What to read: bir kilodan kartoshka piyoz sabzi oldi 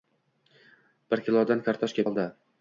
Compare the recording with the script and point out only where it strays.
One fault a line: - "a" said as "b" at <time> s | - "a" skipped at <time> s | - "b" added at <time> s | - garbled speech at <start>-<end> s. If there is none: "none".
- "piyoz sabzi" skipped at 2.0 s